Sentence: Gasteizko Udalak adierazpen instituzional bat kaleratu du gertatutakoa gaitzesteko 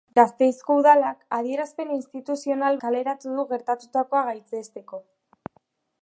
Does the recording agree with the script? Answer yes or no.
no